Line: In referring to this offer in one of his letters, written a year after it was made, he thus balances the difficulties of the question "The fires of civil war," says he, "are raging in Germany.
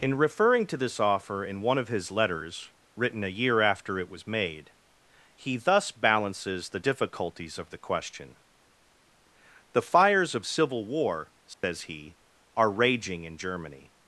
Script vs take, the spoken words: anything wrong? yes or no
no